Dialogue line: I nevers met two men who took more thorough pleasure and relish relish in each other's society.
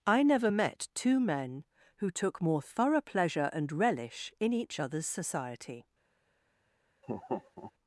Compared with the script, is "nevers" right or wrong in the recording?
wrong